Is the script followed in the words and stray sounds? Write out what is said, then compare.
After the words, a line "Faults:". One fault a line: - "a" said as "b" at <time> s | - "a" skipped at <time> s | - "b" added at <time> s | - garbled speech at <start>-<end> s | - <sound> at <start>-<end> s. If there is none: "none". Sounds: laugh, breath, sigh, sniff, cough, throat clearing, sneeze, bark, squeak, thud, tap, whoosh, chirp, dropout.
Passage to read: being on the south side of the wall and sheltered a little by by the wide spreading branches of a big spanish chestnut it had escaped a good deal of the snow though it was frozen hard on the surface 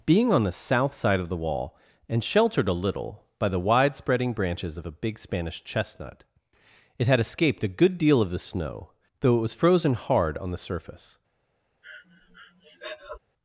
being on the south side of the wall and sheltered a little by the wide spreading branches of a big spanish chestnut it had escaped a good deal of the snow though it was frozen hard on the surface
Faults:
- "by" skipped at 3.5 s
- breath at 11.8-13.2 s